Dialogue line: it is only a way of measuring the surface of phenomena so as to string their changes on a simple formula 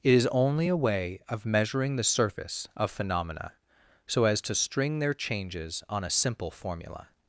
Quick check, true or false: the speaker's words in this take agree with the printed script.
true